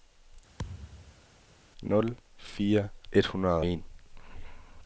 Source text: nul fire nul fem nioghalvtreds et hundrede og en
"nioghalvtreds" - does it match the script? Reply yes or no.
no